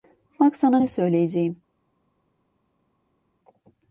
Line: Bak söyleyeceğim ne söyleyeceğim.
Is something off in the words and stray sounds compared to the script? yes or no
yes